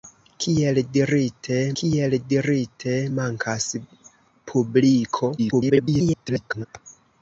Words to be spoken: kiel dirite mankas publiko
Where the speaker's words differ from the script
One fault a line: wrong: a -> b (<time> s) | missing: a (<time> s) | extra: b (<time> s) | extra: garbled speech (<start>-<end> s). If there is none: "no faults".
extra: kiel dirite (1.8 s)
extra: garbled speech (5.4-6.7 s)